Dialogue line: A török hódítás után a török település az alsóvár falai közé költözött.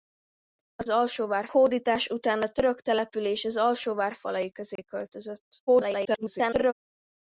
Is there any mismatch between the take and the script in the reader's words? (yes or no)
yes